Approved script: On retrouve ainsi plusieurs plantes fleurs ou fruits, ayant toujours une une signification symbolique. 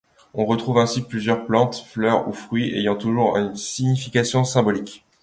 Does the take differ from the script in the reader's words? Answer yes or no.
yes